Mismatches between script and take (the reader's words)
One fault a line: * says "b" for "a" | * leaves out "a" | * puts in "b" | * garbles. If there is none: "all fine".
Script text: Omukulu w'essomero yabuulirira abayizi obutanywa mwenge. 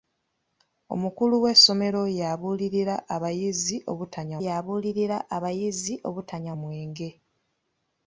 * puts in "yabuulirira abayizi obutanywa"